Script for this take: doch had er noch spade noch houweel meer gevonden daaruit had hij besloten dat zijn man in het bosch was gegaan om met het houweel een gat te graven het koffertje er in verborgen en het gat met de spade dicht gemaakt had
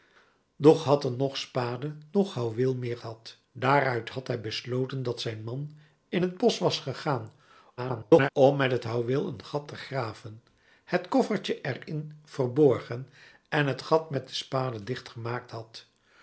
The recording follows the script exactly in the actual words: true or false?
false